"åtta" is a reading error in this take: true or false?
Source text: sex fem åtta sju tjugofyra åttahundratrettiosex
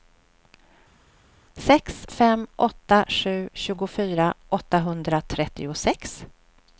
false